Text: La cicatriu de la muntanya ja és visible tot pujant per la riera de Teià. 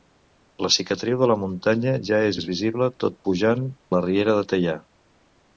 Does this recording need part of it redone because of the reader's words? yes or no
yes